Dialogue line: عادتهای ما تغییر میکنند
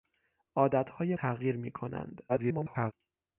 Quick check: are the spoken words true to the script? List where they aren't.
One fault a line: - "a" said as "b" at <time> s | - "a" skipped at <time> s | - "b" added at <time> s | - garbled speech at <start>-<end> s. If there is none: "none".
- "ما" skipped at 1.1 s
- garbled speech at 2.3-2.9 s